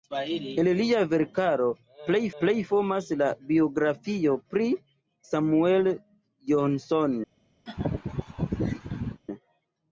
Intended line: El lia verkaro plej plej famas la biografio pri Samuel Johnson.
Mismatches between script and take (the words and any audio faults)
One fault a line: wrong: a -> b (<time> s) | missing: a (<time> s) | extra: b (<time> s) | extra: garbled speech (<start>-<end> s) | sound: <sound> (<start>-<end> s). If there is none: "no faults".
sound: laugh (7.7-9.2 s)